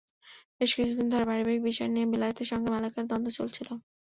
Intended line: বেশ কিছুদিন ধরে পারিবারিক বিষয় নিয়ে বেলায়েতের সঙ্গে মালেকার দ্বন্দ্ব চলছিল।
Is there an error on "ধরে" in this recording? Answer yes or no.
no